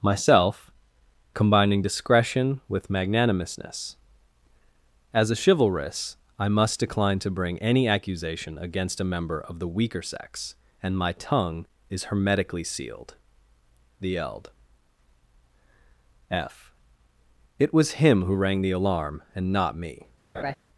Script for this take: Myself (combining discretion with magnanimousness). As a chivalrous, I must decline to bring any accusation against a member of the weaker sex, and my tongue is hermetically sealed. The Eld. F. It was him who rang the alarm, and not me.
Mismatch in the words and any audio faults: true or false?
true